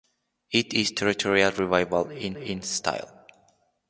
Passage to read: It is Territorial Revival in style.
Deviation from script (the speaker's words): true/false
true